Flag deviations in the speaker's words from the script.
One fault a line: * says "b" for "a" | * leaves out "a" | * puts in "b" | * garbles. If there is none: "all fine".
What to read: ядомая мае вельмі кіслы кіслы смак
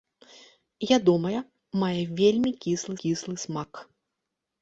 all fine